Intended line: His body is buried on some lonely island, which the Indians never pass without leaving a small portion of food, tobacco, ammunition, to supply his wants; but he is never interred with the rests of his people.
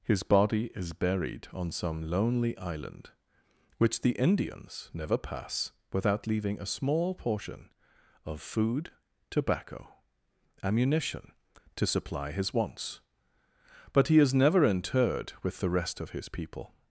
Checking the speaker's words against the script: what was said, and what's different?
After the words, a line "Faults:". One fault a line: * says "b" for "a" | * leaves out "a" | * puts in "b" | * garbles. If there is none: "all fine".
His body is buried on some lonely island, which the Indians never pass without leaving a small portion of food, tobacco, ammunition, to supply his wants; but he is never interred with the rest of his people.
Faults:
* says "rest" for "rests"